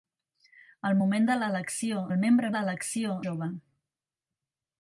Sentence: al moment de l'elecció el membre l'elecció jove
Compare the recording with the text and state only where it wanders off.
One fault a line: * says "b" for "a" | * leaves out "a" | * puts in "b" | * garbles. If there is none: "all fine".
all fine